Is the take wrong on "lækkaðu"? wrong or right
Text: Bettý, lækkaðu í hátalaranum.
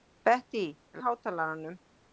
wrong